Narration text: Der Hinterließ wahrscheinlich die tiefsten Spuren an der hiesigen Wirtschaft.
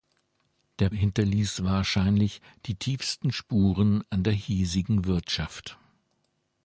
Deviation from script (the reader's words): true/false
false